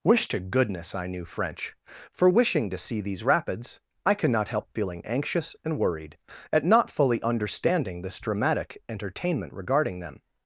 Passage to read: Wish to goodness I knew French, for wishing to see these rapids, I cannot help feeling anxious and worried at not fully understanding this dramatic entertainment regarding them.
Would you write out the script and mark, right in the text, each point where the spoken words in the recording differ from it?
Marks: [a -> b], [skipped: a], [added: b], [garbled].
Wish to goodness I knew French, for wishing to see these rapids, I cannot help feeling anxious and worried at not fully understanding this dramatic entertainment regarding them.